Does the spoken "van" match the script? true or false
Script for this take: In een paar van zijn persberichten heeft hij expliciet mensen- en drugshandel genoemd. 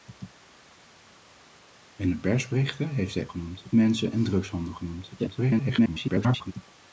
false